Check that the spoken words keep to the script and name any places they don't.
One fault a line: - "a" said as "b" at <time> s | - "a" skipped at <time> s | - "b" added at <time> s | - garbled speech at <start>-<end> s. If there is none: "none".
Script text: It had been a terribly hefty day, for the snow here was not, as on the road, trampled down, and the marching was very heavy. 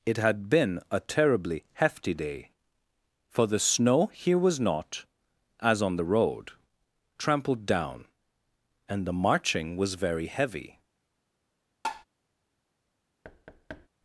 none